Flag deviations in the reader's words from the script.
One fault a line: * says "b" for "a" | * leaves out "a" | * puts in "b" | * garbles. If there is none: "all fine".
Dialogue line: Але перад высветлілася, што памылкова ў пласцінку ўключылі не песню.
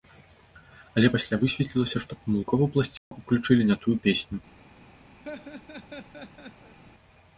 * says "пасля" for "перад"
* puts in "тую"